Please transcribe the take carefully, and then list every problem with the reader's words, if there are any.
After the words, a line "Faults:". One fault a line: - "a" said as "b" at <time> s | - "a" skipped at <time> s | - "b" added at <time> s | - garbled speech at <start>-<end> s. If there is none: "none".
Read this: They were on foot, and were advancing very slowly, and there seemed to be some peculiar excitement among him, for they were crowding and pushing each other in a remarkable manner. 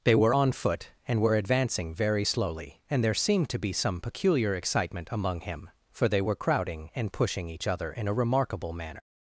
They were on foot, and were advancing very slowly, and there seemed to be some peculiar excitement among him, for they were crowding and pushing each other in a remarkable manner.
Faults:
none